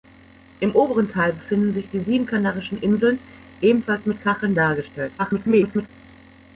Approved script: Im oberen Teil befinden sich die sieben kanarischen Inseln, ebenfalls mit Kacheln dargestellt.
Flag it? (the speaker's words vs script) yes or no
yes